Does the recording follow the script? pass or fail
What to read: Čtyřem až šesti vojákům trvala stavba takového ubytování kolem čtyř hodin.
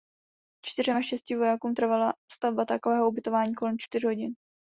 pass